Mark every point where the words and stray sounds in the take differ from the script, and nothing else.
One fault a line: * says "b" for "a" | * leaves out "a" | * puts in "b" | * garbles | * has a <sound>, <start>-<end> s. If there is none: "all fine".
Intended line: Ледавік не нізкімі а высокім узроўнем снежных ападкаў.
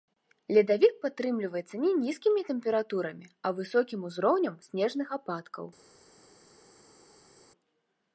* puts in "падтрымліваецца"
* puts in "тэмпературамі"